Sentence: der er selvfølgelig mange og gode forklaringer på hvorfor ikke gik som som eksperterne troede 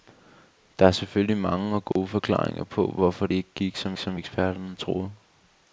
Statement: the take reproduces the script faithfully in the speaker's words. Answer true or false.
true